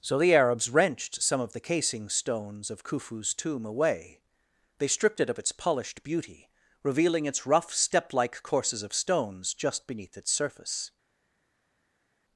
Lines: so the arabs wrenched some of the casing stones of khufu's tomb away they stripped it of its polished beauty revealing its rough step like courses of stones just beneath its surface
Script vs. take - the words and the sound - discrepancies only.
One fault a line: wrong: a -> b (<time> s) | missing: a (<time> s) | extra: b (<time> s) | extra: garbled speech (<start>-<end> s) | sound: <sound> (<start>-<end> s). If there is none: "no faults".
no faults